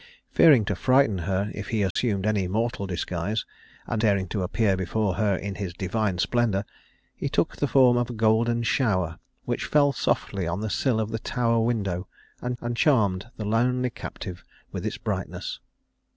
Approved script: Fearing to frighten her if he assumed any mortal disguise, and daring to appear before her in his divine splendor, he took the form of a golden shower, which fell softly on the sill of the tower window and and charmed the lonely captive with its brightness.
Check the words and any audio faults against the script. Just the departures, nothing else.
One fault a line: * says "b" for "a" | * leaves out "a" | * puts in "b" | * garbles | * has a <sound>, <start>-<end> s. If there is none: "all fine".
* has a dropout, 1.9-2.0 s